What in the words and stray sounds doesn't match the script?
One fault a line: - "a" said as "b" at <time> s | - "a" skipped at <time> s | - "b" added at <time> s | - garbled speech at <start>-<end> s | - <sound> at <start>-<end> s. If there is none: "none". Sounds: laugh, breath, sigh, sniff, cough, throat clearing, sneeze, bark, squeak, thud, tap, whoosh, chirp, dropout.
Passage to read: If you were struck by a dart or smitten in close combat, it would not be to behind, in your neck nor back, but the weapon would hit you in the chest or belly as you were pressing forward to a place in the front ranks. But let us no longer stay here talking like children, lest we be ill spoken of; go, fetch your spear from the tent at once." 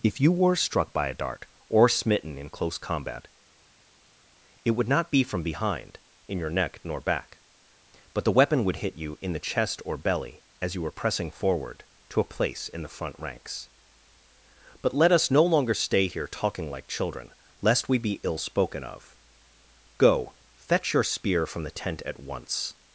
- "to" said as "from" at 5.2 s